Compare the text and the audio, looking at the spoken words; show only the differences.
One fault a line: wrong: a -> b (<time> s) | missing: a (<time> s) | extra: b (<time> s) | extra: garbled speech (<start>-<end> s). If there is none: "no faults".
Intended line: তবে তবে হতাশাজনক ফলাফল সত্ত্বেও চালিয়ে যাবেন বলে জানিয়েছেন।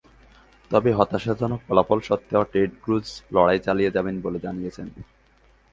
missing: তবে (0.9 s)
extra: টেড ক্রুজ লড়াই (2.5 s)